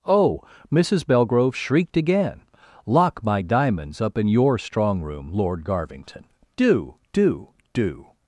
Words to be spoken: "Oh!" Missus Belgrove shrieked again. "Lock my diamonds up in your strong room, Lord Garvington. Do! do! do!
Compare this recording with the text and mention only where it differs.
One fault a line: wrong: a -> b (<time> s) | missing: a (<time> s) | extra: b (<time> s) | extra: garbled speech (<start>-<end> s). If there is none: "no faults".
no faults